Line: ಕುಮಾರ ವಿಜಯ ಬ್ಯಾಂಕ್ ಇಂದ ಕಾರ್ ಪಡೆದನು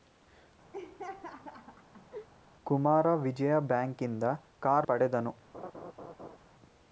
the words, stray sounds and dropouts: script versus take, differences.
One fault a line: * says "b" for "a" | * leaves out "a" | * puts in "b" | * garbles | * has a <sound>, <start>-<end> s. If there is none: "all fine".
* has a laugh, 0.7-2.3 s
* has a laugh, 5.5-6.4 s